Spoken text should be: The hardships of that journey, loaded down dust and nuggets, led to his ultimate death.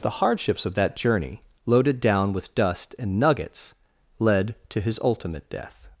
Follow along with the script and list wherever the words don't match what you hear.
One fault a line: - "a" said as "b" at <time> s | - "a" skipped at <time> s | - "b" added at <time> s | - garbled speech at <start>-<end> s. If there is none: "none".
- "with" added at 2.3 s